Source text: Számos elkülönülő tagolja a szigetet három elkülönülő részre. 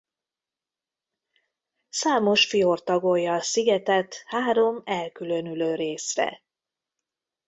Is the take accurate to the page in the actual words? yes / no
no